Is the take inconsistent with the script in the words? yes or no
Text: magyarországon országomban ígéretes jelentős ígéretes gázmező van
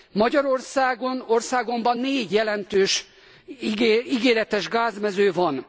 yes